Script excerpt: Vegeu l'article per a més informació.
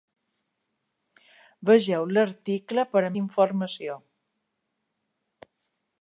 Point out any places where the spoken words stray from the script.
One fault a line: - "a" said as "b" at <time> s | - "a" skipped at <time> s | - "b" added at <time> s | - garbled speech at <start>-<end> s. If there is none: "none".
- "més" skipped at 3.1 s